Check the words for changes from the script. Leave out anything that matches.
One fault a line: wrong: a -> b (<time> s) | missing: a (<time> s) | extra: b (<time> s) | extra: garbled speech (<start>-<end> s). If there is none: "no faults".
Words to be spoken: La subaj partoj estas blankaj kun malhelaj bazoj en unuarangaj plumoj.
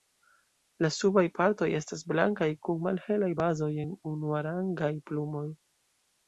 no faults